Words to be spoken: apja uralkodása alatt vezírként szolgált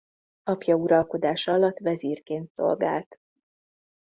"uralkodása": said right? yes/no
yes